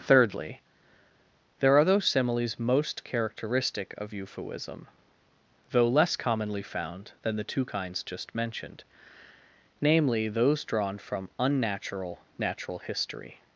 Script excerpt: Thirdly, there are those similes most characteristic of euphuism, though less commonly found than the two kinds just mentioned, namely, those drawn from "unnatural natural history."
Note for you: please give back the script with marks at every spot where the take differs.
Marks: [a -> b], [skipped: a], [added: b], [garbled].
Thirdly, there are those similes most characteristic of euphuism, though less commonly found than the two kinds just mentioned, namely, those drawn from "unnatural natural history."